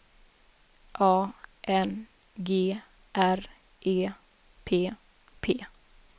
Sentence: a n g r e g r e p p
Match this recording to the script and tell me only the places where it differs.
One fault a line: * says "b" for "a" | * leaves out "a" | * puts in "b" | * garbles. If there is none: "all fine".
* leaves out "g r e"